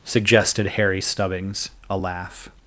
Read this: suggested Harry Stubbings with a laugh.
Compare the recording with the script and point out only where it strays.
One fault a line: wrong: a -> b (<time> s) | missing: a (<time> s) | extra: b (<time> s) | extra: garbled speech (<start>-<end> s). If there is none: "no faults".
missing: with (1.7 s)